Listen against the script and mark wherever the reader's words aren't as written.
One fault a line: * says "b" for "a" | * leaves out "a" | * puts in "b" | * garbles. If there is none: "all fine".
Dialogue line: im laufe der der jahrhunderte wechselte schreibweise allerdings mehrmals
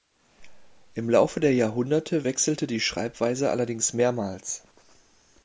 * leaves out "der"
* puts in "die"